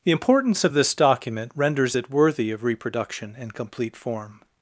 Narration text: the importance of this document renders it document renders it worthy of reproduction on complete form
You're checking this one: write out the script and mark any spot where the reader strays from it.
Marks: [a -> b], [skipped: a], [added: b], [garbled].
the importance of this document renders it [skipped: document renders it] worthy of reproduction [on -> in] complete form